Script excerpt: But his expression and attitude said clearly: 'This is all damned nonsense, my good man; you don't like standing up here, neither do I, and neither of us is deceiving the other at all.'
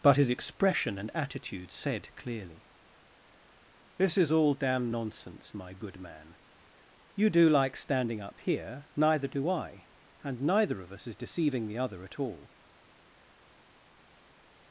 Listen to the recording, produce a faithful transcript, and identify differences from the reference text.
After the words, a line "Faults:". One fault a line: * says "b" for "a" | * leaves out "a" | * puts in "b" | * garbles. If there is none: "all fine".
But his expression and attitude said clearly: 'This is all damn nonsense, my good man; you do like standing up here, neither do I, and neither of us is deceiving the other at all.'
Faults:
* says "damn" for "damned"
* says "do" for "don't"